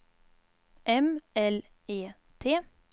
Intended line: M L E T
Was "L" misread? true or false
false